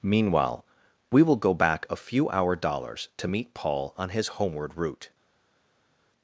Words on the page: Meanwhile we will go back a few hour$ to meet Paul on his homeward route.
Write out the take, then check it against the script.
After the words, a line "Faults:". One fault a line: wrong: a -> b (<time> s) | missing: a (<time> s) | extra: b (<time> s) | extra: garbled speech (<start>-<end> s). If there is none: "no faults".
Meanwhile we will go back a few hour$ dollars to meet Paul on his homeward route.
Faults:
extra: dollars (2.5 s)